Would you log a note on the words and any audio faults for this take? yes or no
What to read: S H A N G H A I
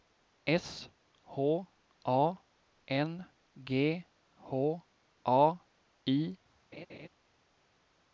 yes